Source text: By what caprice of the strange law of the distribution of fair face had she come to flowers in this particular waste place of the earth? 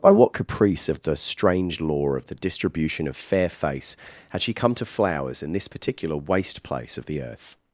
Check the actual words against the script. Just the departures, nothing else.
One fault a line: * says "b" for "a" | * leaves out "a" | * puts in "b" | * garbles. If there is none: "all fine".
all fine